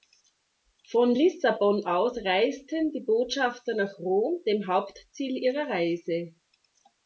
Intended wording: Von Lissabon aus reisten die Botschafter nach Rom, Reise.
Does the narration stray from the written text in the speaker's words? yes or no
yes